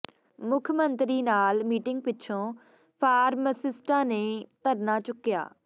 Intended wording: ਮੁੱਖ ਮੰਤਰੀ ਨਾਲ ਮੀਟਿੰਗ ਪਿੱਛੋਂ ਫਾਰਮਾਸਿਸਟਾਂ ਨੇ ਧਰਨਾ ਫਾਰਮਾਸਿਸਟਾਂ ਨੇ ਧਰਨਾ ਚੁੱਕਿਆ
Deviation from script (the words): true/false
true